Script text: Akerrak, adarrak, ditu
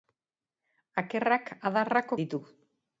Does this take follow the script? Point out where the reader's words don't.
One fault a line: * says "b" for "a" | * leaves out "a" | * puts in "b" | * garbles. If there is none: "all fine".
all fine